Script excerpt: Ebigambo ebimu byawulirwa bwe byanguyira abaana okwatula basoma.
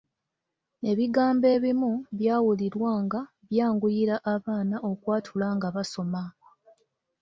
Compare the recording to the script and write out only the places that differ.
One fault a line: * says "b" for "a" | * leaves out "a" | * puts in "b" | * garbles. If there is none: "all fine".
* says "nga" for "bwe"
* puts in "nga"